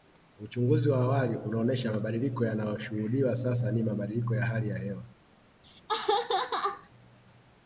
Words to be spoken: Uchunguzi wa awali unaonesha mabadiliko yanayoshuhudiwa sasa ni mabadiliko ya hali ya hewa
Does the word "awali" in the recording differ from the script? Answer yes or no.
no